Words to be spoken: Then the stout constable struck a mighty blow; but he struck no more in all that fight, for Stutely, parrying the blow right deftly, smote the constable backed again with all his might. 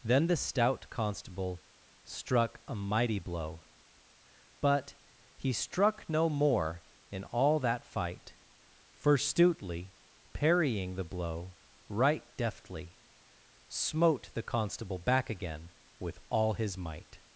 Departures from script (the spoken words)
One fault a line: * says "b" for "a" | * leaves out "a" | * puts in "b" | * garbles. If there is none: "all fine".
* says "back" for "backed"